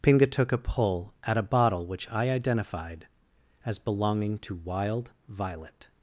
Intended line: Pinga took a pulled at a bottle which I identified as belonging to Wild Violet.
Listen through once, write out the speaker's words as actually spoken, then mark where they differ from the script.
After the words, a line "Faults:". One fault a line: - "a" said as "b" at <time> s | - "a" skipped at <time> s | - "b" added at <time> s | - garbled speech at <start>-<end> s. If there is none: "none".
Pinga took a pull at a bottle which I identified as belonging to Wild Violet.
Faults:
- "pulled" said as "pull" at 0.6 s